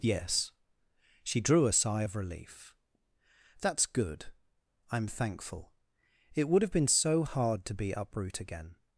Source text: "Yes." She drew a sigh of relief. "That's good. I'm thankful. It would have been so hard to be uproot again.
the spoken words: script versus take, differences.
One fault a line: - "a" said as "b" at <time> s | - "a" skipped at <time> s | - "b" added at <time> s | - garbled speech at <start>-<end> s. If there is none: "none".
none